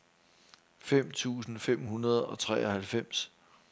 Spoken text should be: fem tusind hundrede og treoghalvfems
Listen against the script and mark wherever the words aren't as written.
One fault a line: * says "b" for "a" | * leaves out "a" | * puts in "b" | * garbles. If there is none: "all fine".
* puts in "fem"